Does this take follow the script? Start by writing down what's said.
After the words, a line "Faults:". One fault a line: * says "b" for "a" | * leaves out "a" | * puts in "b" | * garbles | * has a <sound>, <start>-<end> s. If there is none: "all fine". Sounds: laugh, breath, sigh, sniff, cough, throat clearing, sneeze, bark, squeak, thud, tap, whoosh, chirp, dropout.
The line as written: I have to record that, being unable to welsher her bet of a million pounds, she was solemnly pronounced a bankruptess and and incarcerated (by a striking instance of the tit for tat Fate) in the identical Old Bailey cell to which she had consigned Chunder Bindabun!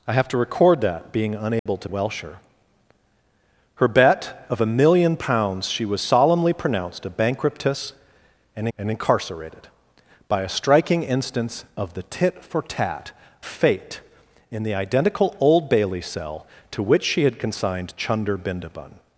I have to record that, being unable to welsher her bet of a million pounds, she was solemnly pronounced a bankruptess and and incarcerated (by a striking instance of the tit for tat Fate) in the identical Old Bailey cell to which she had consigned Chunder Bindabun!
Faults:
* has a dropout, 1.6-1.7 s